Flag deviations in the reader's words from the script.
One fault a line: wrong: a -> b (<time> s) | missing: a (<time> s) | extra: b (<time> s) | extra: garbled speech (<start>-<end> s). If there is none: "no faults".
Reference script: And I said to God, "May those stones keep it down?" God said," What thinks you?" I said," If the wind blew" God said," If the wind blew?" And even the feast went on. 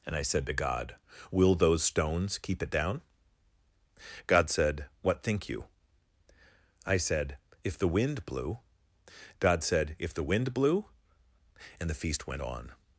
wrong: May -> Will (1.3 s)
wrong: thinks -> think (5.2 s)
missing: even (11.9 s)